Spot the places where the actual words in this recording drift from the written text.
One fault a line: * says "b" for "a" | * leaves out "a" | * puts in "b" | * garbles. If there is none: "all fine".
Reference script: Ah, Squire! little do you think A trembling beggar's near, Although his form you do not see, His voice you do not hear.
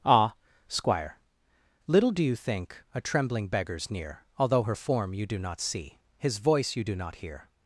* says "her" for "his"